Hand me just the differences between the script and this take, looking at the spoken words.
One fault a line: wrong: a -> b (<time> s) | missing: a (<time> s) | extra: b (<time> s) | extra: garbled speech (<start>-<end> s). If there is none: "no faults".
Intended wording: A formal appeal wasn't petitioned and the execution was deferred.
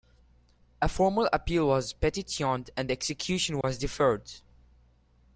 wrong: wasn't -> was (1.7 s)